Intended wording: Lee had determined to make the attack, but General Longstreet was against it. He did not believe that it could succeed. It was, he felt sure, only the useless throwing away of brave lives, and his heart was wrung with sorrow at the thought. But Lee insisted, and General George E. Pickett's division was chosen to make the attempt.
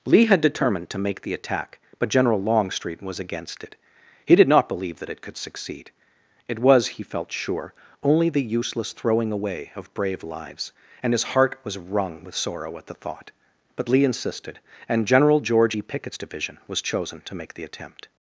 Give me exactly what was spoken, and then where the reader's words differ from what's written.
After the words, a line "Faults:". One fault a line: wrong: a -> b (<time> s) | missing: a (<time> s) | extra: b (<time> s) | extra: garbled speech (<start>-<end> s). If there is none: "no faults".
Lee had determined to make the attack, but General Longstreet was against it. He did not believe that it could succeed. It was, he felt sure, only the useless throwing away of brave lives, and his heart was wrung with sorrow at the thought. But Lee insisted, and General George E. Pickett's division was chosen to make the attempt.
Faults:
no faults